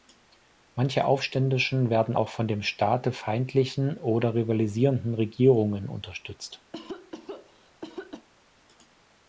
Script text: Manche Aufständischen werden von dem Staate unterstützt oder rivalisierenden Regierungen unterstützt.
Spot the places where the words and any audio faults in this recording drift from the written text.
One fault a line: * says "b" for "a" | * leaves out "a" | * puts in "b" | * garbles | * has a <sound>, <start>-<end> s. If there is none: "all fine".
* puts in "auch"
* says "feindlichen" for "unterstützt"
* has a cough, 6.7-8.3 s